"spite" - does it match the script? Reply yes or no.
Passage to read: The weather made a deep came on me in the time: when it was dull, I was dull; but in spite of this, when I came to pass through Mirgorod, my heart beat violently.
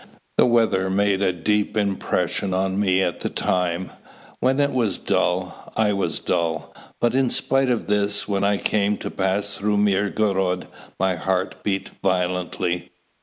yes